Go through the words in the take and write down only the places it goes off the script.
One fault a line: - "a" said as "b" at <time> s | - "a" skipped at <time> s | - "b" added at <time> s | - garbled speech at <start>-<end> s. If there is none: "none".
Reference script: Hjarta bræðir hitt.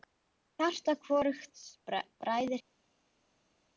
- "hvorugs" added at 1.0 s